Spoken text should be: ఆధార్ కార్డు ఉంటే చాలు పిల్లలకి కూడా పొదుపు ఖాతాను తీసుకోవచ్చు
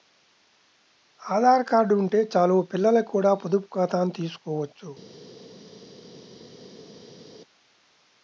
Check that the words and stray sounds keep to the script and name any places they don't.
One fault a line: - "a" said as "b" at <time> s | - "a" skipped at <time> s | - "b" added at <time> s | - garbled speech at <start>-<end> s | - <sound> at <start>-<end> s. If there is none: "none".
none